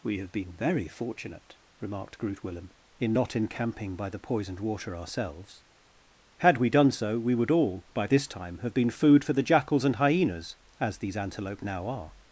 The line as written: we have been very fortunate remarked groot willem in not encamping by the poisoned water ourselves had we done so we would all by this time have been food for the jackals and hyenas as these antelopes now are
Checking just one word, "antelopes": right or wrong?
wrong